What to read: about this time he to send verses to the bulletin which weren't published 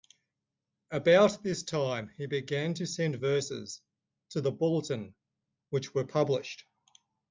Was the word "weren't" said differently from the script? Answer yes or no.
yes